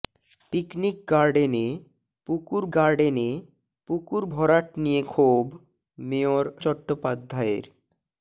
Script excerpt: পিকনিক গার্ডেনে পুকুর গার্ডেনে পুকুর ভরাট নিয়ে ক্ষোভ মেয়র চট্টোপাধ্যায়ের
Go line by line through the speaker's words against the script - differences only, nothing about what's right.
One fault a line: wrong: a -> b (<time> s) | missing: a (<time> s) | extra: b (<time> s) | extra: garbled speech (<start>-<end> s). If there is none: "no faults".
no faults